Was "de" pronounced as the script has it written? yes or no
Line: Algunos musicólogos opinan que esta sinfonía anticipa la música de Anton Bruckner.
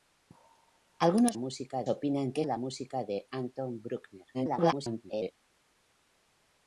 yes